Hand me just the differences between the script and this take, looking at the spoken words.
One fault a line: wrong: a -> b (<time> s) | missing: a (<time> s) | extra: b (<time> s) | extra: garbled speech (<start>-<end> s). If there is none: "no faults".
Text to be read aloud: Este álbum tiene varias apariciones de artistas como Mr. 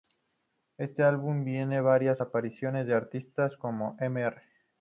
no faults